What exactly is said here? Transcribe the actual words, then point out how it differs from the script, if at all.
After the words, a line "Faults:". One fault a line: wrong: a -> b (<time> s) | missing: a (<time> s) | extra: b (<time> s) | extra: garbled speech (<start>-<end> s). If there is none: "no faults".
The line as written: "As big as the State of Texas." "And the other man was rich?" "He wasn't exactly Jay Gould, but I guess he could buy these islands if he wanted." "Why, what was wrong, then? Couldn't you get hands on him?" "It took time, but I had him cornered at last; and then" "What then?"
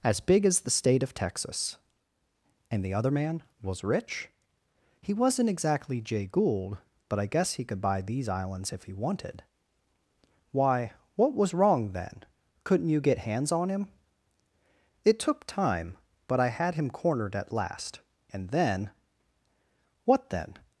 "As big as the State of Texas." "And the other man was rich?" "He wasn't exactly Jay Gould, but I guess he could buy these islands if he wanted." "Why, what was wrong, then? Couldn't you get hands on him?" "It took time, but I had him cornered at last; and then" "What then?"
Faults:
no faults